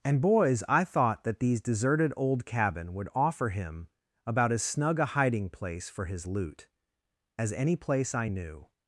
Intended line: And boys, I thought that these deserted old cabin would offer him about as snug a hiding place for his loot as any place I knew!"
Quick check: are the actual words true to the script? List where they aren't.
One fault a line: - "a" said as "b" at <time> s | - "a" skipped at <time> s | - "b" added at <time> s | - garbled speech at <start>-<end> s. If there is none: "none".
none